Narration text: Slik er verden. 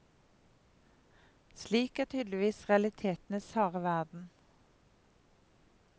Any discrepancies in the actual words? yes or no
yes